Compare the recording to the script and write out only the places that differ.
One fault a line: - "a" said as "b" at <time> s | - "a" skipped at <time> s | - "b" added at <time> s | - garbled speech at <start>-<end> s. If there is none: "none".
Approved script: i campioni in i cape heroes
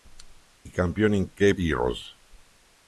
none